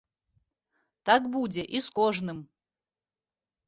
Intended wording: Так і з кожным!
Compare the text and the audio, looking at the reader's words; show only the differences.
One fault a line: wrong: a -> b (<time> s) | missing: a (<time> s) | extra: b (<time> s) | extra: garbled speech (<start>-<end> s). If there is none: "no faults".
extra: будзе (1.4 s)